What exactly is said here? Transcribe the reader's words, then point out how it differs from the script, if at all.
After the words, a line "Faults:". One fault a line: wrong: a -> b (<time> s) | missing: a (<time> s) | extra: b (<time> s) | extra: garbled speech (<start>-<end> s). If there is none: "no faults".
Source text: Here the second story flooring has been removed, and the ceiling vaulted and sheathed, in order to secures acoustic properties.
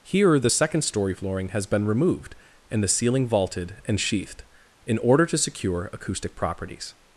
Here the second story flooring has been removed, and the ceiling vaulted and sheathed, in order to secure acoustic properties.
Faults:
wrong: secures -> secure (5.4 s)